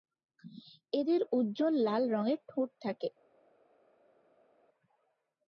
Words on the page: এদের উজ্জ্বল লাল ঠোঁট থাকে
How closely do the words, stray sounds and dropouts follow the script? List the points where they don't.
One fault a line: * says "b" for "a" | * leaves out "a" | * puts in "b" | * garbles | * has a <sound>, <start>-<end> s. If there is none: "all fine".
* puts in "রঙের"